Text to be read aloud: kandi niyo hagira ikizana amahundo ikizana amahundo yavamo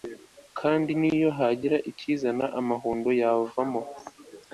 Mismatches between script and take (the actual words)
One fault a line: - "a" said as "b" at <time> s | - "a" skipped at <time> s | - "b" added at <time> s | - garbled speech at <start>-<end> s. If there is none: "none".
- "ikizana amahundo" skipped at 3.1 s